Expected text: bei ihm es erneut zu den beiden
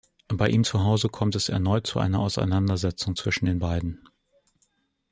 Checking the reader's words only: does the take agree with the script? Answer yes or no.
no